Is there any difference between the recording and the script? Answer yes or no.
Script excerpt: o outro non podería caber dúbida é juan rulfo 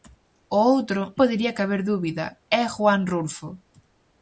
yes